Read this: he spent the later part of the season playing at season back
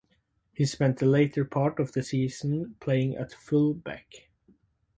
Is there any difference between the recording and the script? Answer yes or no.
yes